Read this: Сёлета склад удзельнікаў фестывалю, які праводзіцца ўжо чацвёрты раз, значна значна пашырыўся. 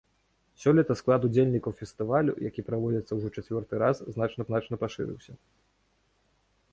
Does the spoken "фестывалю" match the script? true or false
true